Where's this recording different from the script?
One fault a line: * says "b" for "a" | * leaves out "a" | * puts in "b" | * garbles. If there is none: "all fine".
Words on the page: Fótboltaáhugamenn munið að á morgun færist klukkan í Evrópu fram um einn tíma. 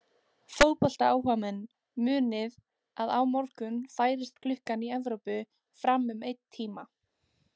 all fine